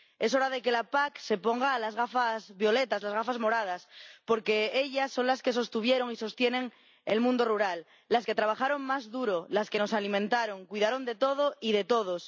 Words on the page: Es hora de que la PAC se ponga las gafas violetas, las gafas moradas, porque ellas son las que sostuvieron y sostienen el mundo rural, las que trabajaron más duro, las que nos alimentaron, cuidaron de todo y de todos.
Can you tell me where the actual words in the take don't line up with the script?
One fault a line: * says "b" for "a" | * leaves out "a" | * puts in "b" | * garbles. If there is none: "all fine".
all fine